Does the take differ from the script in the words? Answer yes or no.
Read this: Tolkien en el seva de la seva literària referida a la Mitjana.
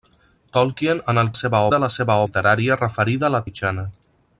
no